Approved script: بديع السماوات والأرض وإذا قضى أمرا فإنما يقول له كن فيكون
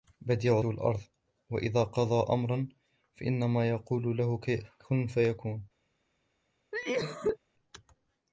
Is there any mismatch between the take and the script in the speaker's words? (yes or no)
yes